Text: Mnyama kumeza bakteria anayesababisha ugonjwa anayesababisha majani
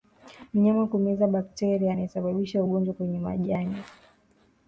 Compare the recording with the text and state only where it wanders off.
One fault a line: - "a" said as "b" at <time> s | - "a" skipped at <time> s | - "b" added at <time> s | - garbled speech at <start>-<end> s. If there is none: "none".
- "anayesababisha" said as "kwenye" at 2.9 s